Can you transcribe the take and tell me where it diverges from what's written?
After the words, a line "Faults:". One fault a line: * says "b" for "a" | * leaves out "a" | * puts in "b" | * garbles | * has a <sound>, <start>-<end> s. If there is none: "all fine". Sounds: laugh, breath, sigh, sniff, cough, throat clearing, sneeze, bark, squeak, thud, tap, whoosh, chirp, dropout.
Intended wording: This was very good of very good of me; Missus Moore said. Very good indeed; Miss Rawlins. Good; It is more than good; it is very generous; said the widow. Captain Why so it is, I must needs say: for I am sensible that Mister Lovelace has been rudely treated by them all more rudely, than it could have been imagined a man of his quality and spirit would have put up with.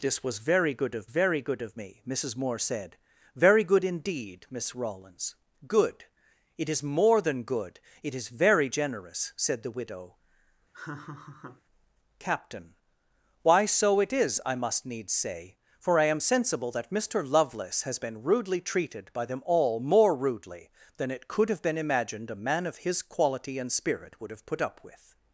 This was very good of very good of me; Missus Moore said. Very good indeed; Miss Rawlins. Good; It is more than good; it is very generous; said the widow. Captain Why so it is, I must needs say: for I am sensible that Mister Lovelace has been rudely treated by them all more rudely, than it could have been imagined a man of his quality and spirit would have put up with.
Faults:
* has a laugh, 10.7-11.6 s